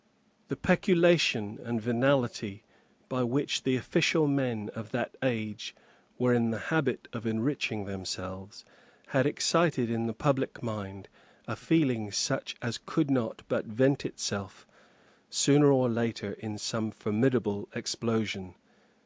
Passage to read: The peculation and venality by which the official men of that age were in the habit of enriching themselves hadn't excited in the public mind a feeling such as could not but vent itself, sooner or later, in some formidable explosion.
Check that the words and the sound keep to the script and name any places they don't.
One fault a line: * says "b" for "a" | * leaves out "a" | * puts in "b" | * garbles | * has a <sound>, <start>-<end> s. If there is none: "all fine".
* says "had" for "hadn't"